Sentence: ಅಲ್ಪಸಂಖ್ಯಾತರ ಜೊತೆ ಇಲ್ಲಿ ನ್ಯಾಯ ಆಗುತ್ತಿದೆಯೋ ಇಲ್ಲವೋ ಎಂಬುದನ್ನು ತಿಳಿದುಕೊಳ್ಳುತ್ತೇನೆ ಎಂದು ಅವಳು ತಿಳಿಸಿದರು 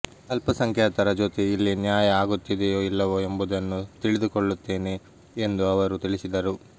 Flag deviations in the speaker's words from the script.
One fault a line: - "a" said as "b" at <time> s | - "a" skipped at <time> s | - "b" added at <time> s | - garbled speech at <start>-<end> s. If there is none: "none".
- "ಅವಳು" said as "ಅವರು" at 5.7 s